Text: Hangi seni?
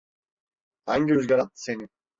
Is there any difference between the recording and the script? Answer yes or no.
yes